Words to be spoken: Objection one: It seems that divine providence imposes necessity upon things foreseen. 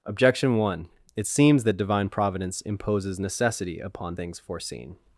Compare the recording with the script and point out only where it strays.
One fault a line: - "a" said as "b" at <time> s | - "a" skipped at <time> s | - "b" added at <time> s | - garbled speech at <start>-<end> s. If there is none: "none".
none